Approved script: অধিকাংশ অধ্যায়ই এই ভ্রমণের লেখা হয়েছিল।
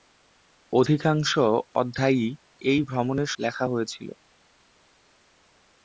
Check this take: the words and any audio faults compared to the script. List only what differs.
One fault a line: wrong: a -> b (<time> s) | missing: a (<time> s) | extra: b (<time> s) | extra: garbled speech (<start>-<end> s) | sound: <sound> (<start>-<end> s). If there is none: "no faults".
no faults